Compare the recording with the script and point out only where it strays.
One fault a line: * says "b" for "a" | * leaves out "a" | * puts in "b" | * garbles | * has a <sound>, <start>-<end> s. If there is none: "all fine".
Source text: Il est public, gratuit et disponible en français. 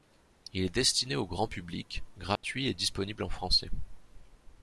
* puts in "destiné au grand"
* has a dropout, 2.4-2.4 s